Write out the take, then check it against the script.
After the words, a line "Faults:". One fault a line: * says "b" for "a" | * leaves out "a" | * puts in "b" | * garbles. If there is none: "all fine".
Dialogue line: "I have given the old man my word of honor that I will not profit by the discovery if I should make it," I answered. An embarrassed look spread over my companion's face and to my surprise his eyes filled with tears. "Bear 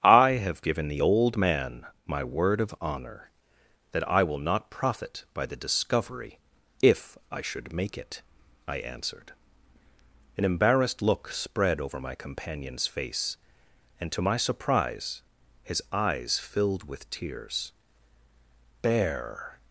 "I have given the old man my word of honor that I will not profit by the discovery if I should make it," I answered. An embarrassed look spread over my companion's face and to my surprise his eyes filled with tears. "Bear
Faults:
all fine